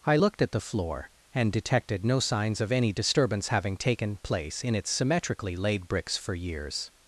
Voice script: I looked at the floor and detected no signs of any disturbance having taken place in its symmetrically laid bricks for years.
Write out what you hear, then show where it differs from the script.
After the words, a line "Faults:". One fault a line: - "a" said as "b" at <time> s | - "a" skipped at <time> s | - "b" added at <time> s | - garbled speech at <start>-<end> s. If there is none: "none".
I looked at the floor and detected no signs of any disturbance having taken place in its symmetrically laid bricks for years.
Faults:
none